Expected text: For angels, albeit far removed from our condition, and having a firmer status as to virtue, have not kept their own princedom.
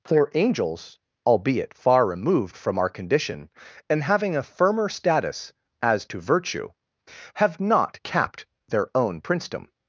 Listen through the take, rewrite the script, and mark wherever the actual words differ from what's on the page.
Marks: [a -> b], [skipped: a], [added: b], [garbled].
For angels, albeit far removed from our condition, and having a firmer status as to virtue, have not [kept -> capped] their own princedom.